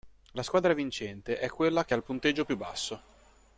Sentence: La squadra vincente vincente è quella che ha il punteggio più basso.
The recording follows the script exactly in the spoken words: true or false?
false